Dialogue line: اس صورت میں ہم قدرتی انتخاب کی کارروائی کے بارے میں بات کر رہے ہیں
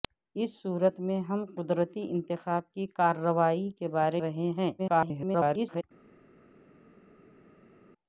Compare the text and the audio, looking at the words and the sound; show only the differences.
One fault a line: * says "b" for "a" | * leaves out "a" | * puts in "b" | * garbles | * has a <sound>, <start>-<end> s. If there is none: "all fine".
* leaves out "میں بات کر"
* garbles